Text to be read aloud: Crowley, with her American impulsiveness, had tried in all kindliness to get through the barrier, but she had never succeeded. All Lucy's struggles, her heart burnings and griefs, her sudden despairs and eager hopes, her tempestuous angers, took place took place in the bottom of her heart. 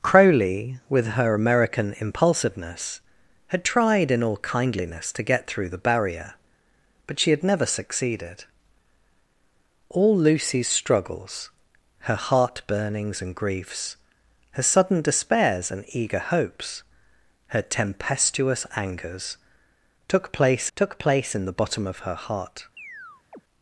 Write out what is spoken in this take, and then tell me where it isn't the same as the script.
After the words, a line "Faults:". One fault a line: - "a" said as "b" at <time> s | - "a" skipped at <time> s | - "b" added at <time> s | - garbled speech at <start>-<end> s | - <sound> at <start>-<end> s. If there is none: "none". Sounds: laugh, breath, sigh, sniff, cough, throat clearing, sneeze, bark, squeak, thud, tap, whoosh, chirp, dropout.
Crowley, with her American impulsiveness, had tried in all kindliness to get through the barrier, but she had never succeeded. All Lucy's struggles, her heart burnings and griefs, her sudden despairs and eager hopes, her tempestuous angers, took place took place in the bottom of her heart.
Faults:
- chirp at 22.8-23.4 s